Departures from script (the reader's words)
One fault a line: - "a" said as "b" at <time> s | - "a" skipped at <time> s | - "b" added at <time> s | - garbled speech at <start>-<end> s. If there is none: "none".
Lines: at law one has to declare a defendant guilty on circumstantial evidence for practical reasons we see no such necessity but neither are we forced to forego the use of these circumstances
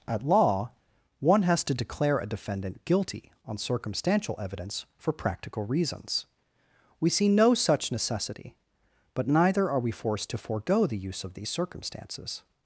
none